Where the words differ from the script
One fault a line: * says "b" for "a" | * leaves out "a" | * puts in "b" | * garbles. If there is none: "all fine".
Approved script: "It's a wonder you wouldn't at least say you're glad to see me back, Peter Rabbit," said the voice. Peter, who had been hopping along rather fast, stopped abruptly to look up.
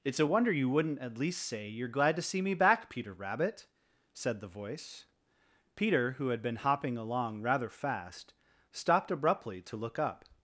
all fine